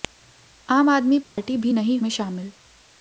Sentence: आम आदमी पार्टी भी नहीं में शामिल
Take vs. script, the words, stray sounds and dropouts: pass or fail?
fail